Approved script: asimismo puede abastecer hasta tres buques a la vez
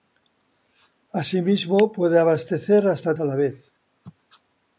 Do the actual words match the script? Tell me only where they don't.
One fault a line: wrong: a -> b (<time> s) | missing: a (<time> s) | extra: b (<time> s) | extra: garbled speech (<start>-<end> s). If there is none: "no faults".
missing: tres buques (3.1 s)